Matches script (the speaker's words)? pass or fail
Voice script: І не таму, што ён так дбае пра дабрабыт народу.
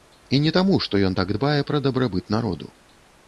pass